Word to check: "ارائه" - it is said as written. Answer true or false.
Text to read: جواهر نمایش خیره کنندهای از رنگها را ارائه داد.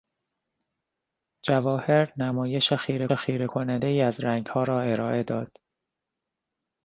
true